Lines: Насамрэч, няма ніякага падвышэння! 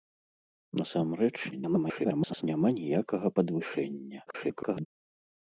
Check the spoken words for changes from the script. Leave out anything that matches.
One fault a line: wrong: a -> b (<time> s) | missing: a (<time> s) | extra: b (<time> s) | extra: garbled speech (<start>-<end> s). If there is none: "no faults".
extra: garbled speech (1.5-2.4 s)
extra: garbled speech (4.3-4.9 s)